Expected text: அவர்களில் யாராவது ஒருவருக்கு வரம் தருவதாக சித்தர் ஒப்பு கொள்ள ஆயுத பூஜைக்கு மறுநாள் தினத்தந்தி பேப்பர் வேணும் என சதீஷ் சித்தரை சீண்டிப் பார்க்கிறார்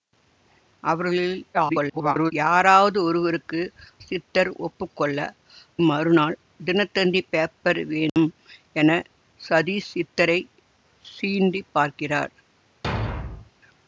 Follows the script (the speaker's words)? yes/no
no